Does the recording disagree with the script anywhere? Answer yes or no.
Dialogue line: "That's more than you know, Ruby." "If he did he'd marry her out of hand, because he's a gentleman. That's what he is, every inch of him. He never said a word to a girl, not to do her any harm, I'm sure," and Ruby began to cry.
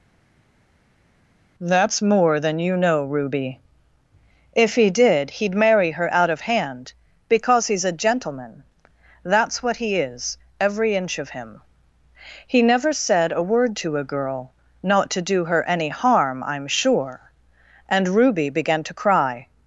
no